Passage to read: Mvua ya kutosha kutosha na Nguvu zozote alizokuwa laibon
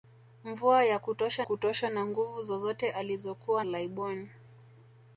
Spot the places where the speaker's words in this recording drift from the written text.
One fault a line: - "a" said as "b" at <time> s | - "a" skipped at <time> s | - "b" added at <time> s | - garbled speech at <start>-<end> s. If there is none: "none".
none